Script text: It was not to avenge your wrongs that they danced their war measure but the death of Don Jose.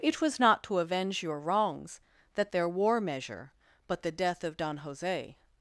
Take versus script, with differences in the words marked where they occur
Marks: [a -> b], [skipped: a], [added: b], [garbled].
It was not to avenge your wrongs that [skipped: they danced] their war measure but the death of Don Jose.